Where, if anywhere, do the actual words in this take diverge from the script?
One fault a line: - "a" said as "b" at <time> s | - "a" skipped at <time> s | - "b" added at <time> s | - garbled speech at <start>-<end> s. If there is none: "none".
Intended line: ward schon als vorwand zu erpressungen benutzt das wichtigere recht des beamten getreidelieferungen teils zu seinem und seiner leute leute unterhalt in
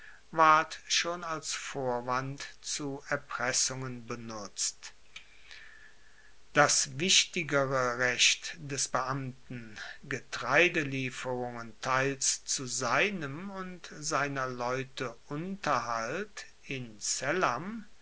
- "leute" skipped at 15.2 s